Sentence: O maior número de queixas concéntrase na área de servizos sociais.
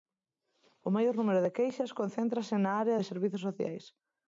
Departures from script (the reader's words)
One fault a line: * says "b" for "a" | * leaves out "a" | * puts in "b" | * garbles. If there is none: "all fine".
all fine